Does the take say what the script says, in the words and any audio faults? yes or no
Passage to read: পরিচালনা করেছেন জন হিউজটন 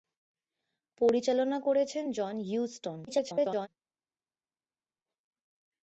no